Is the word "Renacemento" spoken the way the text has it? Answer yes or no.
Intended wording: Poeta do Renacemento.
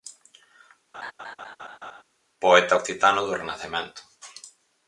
yes